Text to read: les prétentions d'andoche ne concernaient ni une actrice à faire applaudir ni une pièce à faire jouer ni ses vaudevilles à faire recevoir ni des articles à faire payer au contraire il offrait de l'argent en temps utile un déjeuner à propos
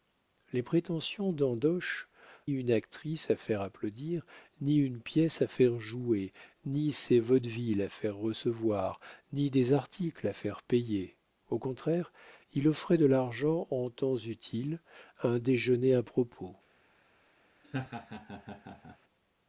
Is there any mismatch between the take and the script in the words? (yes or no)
yes